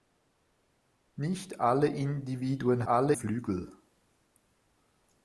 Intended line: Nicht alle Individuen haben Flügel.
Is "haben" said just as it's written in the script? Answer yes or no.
no